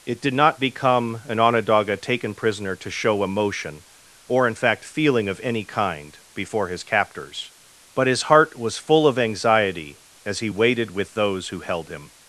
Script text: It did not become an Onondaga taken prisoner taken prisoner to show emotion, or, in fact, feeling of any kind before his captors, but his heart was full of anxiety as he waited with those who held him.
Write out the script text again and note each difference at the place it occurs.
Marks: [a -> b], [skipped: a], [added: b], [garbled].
It did not become an Onondaga taken prisoner [skipped: taken prisoner] to show emotion, or, in fact, feeling of any kind before his captors, but his heart was full of anxiety as he waited with those who held him.